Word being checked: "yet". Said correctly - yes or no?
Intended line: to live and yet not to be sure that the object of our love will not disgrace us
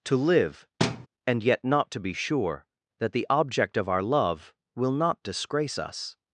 yes